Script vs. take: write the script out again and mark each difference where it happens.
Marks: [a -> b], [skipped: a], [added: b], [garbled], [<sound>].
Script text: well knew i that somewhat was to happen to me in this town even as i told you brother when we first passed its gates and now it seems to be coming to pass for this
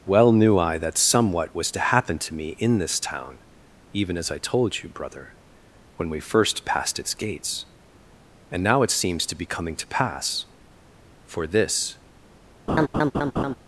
well knew i that somewhat was to happen to me in this town even as i told you brother when we first passed its gates and now it seems to be coming to pass for this [laugh]